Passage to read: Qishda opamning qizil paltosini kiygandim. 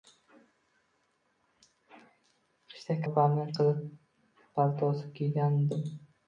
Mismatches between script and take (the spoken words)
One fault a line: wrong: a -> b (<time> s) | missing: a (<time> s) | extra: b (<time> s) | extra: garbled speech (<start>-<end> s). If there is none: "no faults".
no faults